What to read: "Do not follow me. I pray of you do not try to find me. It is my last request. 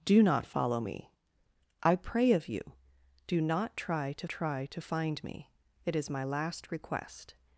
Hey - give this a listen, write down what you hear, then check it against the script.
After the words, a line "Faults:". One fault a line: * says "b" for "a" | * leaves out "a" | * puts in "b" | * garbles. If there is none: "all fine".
"Do not follow me. I pray of you do not try to try to find me. It is my last request.
Faults:
* puts in "try to"